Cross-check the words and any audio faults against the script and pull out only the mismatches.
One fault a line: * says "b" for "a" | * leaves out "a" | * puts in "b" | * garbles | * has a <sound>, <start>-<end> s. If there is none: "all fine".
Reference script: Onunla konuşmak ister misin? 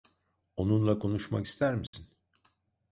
* has a dropout, 1.9-1.9 s